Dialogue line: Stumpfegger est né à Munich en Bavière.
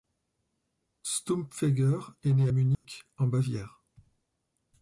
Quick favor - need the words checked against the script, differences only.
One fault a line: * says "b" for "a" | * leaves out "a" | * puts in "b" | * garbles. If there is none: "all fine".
all fine